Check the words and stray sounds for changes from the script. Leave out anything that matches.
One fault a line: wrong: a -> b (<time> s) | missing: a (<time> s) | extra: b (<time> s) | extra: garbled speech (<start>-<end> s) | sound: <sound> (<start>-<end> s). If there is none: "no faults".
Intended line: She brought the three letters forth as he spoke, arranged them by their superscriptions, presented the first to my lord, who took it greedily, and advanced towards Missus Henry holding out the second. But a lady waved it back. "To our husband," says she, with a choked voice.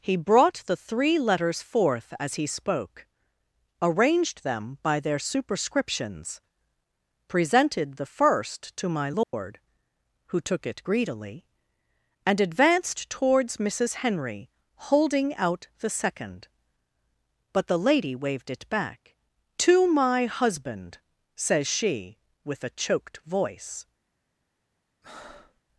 wrong: She -> He (0.0 s)
sound: dropout (9.2-9.3 s)
wrong: a -> the (17.6 s)
wrong: our -> my (19.9 s)
sound: breath (25.0-25.6 s)